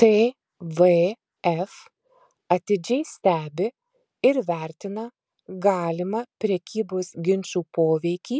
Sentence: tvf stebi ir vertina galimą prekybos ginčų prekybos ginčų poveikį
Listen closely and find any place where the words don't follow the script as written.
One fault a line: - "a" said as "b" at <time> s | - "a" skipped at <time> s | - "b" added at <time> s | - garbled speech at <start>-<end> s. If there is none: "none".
- "atidžiai" added at 2.5 s
- "prekybos ginčų" skipped at 7.6 s